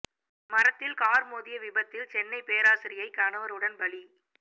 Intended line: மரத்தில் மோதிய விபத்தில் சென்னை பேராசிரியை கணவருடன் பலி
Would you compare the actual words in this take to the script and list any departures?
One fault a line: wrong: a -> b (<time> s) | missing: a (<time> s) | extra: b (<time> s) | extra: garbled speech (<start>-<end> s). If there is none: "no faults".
extra: கார் (0.9 s)